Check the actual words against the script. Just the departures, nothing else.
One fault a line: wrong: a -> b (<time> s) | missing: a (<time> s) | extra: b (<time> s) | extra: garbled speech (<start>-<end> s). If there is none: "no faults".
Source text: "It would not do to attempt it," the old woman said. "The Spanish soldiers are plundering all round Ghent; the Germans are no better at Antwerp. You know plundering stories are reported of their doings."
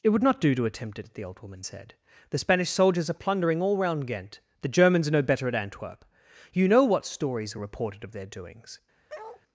wrong: plundering -> what (6.8 s)